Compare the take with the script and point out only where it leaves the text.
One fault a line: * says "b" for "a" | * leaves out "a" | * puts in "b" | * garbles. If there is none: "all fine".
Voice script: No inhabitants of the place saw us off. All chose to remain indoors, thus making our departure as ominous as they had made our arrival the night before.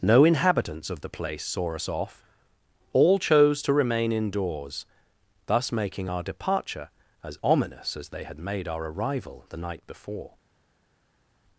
all fine